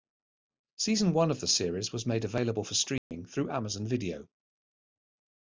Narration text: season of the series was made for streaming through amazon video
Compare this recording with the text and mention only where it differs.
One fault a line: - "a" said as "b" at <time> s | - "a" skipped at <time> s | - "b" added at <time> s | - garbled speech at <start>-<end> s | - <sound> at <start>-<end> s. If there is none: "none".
- "one" added at 1.1 s
- "available" added at 2.2 s
- dropout at 3.0-3.1 s